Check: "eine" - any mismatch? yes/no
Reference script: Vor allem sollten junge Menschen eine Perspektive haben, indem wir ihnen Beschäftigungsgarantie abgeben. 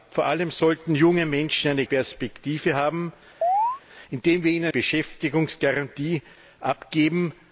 no